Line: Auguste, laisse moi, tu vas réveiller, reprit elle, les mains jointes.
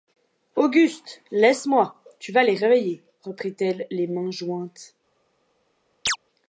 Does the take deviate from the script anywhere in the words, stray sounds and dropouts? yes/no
yes